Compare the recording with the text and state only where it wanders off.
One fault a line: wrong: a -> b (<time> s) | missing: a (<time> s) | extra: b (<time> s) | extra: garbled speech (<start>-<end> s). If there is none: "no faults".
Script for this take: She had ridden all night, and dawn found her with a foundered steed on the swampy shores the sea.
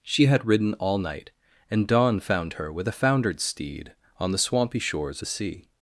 no faults